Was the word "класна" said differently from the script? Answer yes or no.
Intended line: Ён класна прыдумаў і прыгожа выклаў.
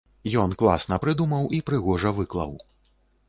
no